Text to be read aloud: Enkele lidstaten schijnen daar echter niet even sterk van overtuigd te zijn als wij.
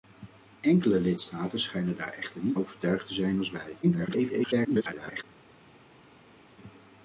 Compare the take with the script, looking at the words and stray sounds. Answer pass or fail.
fail